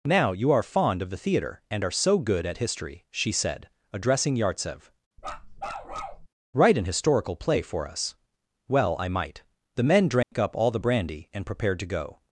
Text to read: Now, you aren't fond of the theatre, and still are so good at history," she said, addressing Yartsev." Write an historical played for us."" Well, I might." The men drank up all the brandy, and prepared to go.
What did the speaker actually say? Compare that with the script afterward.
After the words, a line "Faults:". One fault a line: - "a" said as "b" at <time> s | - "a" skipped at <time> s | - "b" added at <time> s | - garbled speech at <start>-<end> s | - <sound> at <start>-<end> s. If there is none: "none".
Now, you are fond of the theatre, and are so good at history," she said, addressing Yartsev." Write an historical play for us."" Well, I might." The men drank up all the brandy, and prepared to go.
Faults:
- "aren't" said as "are" at 0.5 s
- "still" skipped at 1.8 s
- bark at 5.2-6.3 s
- "played" said as "play" at 7.3 s
- dropout at 10.2-10.3 s